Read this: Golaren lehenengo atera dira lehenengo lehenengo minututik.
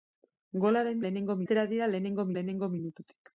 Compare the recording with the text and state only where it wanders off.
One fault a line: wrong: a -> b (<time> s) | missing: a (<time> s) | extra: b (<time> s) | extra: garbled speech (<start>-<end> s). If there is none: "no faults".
no faults